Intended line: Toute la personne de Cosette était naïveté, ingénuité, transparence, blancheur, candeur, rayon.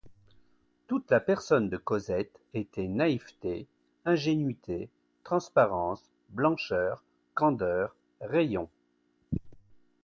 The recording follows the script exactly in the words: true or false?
true